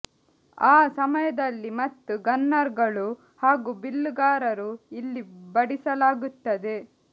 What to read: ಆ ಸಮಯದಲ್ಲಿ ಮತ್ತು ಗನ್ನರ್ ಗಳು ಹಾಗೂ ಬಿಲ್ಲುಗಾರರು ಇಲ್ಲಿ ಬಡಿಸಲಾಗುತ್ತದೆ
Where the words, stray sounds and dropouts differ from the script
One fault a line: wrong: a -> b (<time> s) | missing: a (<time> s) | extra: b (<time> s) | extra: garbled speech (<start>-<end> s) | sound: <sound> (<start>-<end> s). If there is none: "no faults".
no faults